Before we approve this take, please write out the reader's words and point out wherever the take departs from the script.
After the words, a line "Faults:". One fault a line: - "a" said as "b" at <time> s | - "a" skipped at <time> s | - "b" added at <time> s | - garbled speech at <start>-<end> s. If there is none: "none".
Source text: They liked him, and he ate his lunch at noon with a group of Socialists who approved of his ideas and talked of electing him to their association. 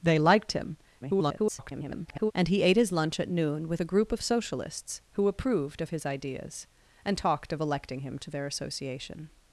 They liked him, [garbled] and he ate his lunch at noon with a group of Socialists who approved of his ideas and talked of electing him to their association.
Faults:
- garbled speech at 1.0-2.3 s